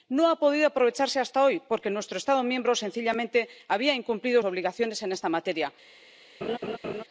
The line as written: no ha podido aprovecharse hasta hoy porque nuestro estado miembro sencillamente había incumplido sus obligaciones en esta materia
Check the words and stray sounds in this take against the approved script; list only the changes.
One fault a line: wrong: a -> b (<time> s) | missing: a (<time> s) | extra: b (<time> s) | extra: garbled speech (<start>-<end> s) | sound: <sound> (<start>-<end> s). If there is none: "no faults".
missing: sus (4.4 s)
sound: laugh (6.4-7.0 s)